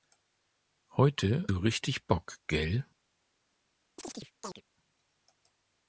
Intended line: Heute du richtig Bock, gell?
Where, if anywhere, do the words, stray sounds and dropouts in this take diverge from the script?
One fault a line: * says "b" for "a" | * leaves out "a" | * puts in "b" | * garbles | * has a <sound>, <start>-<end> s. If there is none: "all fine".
* has a chirp, 4.0-4.6 s